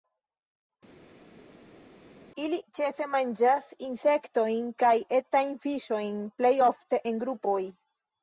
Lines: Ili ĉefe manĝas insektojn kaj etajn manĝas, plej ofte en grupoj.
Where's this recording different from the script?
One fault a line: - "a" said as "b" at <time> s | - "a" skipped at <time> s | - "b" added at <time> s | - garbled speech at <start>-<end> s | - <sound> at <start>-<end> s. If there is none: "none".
- "manĝas" said as "fiŝojn" at 5.7 s